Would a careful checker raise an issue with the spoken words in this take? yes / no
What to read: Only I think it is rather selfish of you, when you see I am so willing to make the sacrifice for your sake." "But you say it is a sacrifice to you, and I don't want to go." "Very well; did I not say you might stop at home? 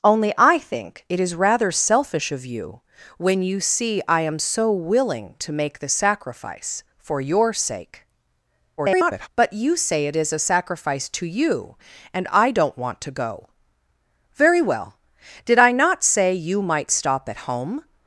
yes